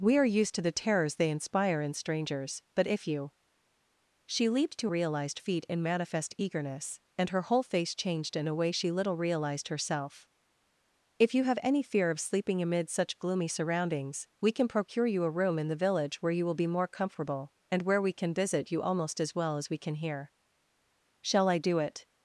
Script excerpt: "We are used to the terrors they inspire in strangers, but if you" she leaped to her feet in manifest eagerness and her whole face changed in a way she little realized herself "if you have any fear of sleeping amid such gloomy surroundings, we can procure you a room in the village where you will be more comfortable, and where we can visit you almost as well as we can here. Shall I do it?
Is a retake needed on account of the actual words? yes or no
yes